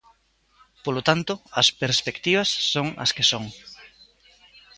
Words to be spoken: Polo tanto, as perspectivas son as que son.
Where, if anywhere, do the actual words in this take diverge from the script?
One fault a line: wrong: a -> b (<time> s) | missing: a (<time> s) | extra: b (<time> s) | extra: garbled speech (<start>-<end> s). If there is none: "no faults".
no faults